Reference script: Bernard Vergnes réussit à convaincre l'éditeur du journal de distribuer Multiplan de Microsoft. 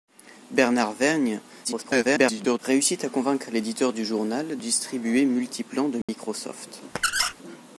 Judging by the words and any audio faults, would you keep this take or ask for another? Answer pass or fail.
fail